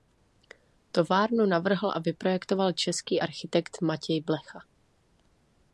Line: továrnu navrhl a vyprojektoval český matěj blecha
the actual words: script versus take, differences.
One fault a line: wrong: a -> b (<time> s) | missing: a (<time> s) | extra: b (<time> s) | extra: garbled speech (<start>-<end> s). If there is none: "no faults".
extra: architekt (3.2 s)